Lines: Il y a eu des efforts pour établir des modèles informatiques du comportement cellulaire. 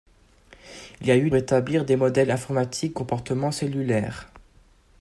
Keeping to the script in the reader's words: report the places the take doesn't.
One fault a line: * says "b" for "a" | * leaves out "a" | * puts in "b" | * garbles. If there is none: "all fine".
* leaves out "des efforts pour"
* leaves out "du"